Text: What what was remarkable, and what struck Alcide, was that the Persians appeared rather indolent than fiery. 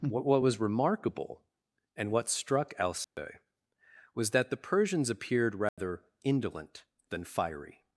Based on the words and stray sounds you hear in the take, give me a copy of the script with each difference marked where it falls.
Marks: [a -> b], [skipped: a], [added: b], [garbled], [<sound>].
What what was remarkable, and what struck Alcide, [dropout] was that the Persians appeared rather [dropout] indolent than fiery.